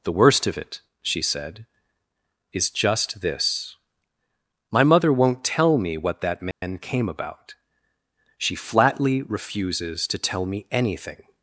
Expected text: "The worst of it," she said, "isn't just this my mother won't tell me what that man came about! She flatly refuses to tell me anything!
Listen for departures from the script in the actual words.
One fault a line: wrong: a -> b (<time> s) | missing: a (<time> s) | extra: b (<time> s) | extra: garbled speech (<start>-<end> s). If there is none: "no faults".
wrong: isn't -> is (2.5 s)